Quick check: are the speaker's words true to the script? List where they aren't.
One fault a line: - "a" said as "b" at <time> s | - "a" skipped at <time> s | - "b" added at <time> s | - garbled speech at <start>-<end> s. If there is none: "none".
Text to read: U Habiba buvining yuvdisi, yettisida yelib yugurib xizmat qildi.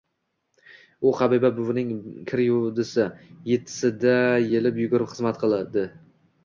- "kir" added at 2.3 s